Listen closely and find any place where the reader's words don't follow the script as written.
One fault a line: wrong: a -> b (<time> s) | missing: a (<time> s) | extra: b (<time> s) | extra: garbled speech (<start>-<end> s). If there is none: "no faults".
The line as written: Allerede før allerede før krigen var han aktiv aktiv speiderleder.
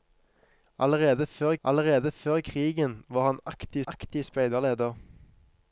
no faults